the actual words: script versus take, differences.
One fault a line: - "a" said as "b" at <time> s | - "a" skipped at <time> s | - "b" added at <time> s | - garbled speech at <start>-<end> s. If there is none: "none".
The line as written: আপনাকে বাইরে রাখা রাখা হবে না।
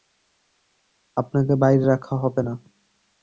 - "রাখা" skipped at 2.1 s